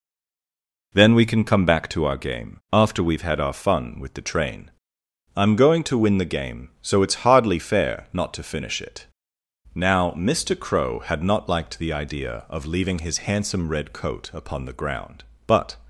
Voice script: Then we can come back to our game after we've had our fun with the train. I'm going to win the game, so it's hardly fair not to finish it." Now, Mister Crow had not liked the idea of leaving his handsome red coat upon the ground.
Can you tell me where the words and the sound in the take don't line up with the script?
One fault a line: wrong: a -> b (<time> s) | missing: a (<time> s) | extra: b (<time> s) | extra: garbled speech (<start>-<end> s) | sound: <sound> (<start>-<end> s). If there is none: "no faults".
extra: But (15.5 s)